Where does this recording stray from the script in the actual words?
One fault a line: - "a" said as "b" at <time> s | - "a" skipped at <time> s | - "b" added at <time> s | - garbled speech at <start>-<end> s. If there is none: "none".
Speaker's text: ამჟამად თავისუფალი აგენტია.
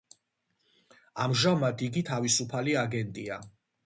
- "იგი" added at 1.9 s